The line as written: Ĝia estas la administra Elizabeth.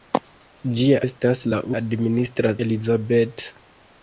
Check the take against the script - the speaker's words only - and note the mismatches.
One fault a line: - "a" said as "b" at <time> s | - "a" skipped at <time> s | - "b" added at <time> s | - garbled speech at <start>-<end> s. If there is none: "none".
none